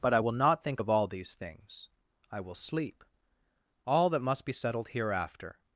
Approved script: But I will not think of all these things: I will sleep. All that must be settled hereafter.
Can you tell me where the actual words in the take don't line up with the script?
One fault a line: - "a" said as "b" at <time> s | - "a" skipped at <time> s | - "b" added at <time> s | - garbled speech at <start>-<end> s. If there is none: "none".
none